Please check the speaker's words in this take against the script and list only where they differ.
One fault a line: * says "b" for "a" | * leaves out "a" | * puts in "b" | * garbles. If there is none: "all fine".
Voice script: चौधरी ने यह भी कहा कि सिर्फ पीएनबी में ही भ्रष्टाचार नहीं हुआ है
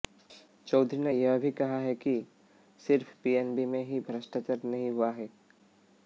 all fine